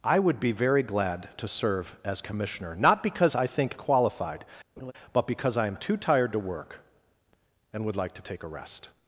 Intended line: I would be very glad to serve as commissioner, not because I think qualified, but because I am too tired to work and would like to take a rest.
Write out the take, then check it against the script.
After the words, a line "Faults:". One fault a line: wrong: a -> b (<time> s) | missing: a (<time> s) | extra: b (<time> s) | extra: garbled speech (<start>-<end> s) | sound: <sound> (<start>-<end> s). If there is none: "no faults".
I would be very glad to serve as commissioner, not because I think qualified, but because I am too tired to work and would like to take a rest.
Faults:
sound: laugh (4.8-4.9 s)